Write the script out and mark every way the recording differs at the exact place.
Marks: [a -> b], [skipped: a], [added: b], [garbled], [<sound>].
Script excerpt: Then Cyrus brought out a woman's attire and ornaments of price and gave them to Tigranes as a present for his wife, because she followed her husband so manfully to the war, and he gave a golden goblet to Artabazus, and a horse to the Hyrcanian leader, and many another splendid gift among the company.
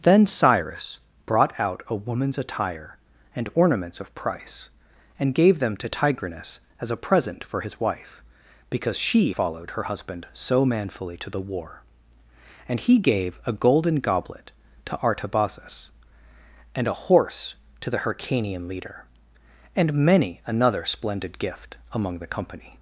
Then Cyrus brought out a woman's attire and ornaments of price and gave them to Tigranes as a present for his wife, because she followed her husband so manfully to the war, and he gave a golden goblet to Artabazus, and a horse to the Hyrcanian leader, and many another splendid gift among the company.